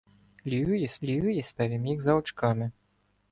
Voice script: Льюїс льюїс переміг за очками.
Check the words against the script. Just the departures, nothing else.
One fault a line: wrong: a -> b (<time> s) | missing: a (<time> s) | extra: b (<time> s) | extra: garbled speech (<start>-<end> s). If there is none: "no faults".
no faults